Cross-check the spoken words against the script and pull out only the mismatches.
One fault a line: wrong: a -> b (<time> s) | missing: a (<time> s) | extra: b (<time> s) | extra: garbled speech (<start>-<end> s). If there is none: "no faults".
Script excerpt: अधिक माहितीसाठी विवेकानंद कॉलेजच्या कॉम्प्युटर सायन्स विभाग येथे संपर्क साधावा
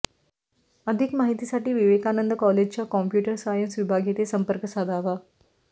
no faults